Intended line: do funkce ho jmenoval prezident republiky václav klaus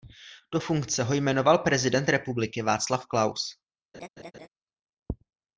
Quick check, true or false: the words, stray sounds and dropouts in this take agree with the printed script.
false